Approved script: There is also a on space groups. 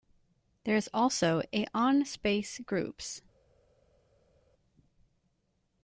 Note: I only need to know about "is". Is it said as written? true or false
true